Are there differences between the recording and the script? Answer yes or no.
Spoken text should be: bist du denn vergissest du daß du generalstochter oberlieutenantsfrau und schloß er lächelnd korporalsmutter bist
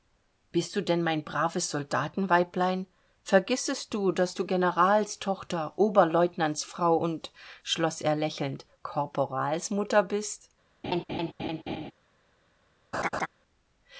yes